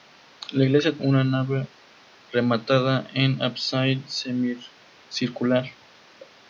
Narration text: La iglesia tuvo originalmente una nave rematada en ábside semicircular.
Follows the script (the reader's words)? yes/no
no